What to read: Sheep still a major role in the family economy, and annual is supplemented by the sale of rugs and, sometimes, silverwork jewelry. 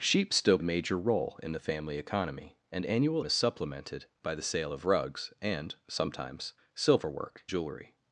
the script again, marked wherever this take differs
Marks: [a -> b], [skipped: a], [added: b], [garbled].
Sheep still a major role in the family economy, and annual is supplemented by the sale of rugs and, sometimes, silverwork jewelry.